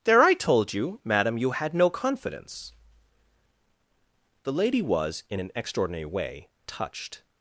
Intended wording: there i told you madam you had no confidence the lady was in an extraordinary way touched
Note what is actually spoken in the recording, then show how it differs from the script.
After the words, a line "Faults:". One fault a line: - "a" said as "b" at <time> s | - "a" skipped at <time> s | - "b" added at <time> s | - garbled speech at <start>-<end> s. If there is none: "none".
there i told you madam you had no confidence the lady was in an extraordinary way touched
Faults:
none